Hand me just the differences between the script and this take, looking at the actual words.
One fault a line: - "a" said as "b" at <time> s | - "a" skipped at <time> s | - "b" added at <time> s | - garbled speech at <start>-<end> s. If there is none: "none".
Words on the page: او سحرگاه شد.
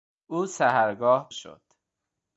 none